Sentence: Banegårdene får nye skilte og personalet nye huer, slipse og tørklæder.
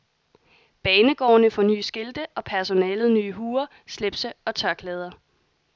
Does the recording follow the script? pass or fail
pass